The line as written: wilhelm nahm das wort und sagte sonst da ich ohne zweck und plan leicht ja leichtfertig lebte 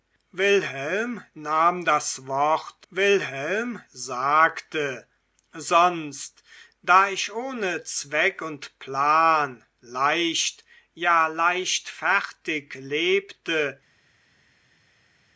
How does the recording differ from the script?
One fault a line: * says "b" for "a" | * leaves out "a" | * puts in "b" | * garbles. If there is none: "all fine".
* says "wilhelm" for "und"